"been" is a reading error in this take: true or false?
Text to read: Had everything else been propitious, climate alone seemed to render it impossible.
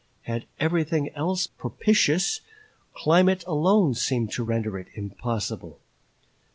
true